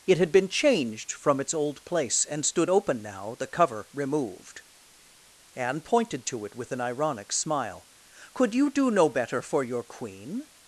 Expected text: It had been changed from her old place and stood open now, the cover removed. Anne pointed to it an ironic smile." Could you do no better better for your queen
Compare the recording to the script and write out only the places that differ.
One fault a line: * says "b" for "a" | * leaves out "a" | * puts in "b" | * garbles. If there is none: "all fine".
* says "its" for "her"
* puts in "with"
* leaves out "better"